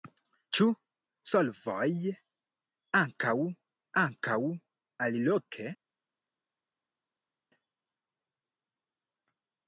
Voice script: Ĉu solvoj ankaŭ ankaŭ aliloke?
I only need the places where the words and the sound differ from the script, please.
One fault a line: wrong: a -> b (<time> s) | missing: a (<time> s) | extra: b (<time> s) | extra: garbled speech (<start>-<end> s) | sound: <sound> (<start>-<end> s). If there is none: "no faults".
no faults